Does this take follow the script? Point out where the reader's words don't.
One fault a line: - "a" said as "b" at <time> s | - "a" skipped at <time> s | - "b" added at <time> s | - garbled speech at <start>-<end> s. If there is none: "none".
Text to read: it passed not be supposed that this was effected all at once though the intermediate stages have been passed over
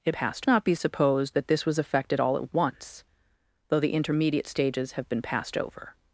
none